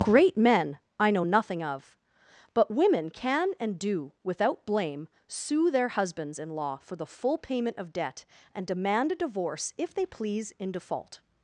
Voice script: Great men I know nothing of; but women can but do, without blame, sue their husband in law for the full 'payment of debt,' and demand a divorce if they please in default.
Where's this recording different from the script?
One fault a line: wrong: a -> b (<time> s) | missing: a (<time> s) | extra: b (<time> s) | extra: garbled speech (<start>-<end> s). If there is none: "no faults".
wrong: but -> and (3.6 s)
wrong: husband -> husbands (5.9 s)